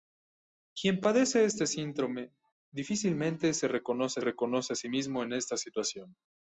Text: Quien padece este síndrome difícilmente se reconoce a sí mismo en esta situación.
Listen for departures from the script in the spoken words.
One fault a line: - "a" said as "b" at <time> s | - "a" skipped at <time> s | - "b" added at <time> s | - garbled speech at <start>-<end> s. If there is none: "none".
- "reconoce" added at 4.2 s